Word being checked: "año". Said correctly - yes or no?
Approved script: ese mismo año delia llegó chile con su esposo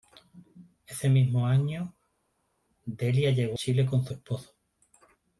yes